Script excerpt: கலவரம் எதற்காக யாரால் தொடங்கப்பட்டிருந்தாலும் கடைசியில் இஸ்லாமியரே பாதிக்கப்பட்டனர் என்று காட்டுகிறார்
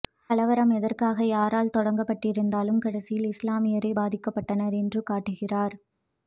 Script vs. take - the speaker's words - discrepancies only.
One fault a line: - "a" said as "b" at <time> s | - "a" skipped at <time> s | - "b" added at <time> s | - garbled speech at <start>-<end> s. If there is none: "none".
none